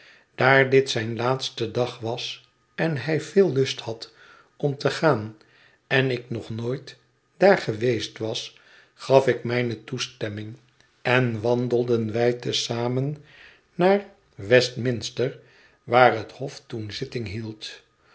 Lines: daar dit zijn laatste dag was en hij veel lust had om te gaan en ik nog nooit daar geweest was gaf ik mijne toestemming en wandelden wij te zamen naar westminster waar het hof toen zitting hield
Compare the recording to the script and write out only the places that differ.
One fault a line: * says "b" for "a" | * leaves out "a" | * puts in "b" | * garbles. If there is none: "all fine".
all fine